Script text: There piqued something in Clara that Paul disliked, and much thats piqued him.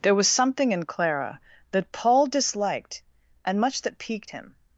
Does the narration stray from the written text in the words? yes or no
yes